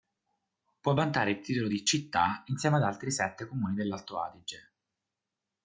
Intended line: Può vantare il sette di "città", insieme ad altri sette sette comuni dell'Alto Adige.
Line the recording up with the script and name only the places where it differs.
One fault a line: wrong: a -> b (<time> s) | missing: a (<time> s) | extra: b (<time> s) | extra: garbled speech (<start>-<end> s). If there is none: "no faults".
wrong: sette -> titolo (1.4 s)
missing: sette (3.5 s)